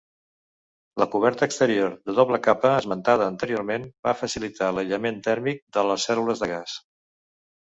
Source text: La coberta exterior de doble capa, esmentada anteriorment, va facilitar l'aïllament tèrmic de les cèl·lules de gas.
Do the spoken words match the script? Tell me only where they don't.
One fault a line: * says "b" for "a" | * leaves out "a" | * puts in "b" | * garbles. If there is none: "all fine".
all fine